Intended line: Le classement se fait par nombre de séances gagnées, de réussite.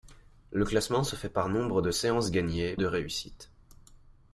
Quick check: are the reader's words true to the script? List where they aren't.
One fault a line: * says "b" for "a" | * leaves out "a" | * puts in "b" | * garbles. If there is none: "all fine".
all fine